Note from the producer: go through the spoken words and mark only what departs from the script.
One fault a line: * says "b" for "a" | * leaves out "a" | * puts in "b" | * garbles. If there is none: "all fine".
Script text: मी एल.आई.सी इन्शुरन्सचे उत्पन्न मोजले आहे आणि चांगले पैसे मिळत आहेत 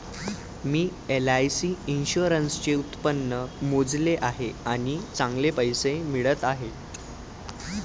all fine